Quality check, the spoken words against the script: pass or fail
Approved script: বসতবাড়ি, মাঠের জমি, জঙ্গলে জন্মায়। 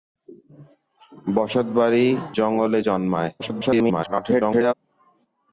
fail